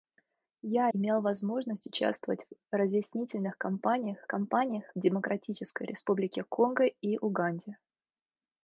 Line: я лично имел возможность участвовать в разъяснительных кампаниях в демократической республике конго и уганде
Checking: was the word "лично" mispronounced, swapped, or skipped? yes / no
yes